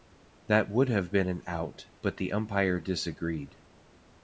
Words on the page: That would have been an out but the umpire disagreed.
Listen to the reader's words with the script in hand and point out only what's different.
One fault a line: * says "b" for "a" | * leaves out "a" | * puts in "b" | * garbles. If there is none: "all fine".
all fine